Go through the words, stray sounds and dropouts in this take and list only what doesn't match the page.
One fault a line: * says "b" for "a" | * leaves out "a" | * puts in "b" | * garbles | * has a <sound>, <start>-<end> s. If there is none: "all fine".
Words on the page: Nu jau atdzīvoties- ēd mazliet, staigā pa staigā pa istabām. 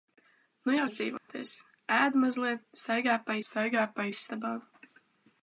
* has a dropout, 1.2-1.3 s